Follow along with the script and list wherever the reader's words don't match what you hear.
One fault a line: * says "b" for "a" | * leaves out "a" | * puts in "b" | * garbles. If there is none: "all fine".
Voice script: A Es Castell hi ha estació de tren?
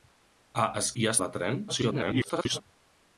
* leaves out "Castell"
* leaves out "estació"
* garbles